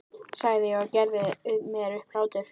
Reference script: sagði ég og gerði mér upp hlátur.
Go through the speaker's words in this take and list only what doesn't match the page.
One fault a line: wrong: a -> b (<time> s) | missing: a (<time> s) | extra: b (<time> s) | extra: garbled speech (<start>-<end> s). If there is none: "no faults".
no faults